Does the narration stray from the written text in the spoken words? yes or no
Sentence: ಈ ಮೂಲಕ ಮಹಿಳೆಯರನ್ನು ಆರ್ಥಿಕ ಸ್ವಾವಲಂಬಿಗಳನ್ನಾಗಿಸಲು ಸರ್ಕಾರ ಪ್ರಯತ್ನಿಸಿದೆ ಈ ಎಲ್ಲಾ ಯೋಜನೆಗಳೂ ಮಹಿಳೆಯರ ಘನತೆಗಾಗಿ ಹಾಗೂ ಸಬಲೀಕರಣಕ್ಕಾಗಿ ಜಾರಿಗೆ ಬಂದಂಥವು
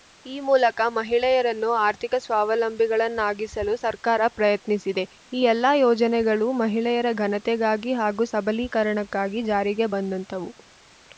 no